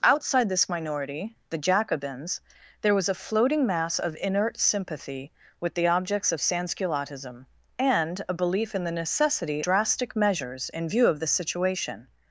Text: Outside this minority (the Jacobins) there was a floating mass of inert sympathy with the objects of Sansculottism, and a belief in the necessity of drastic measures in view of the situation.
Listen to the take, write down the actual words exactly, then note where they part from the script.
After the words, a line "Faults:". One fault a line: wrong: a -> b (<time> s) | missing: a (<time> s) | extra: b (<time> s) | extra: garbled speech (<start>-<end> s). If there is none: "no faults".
Outside this minority (the Jacobins) there was a floating mass of inert sympathy with the objects of Sansculottism, and a belief in the necessity drastic measures in view of the situation.
Faults:
missing: of (9.6 s)